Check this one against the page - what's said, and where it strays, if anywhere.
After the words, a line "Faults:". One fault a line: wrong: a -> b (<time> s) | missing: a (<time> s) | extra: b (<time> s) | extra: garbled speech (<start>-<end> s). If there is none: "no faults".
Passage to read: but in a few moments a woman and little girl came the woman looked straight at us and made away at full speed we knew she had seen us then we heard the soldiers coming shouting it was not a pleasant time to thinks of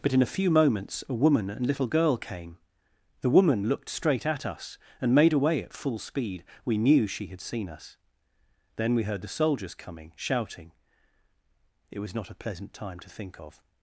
but in a few moments a woman and little girl came the woman looked straight at us and made away at full speed we knew she had seen us then we heard the soldiers coming shouting it was not a pleasant time to think of
Faults:
wrong: thinks -> think (13.1 s)